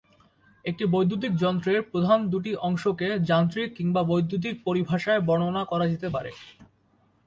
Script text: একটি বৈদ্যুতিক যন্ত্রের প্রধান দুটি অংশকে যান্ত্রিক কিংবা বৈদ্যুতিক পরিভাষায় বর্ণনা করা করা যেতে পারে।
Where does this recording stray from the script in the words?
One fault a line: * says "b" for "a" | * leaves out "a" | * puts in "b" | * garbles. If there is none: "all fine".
* leaves out "করা"